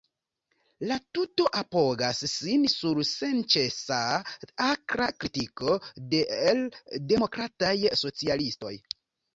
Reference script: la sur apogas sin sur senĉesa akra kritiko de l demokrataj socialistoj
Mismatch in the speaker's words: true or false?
true